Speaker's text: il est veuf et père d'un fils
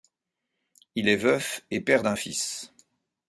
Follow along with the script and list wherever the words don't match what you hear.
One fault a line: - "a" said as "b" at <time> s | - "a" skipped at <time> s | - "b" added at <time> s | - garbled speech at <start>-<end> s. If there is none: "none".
none